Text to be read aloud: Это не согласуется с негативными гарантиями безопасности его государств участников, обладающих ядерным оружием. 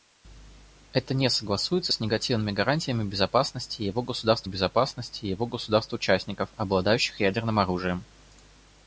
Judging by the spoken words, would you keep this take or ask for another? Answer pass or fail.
fail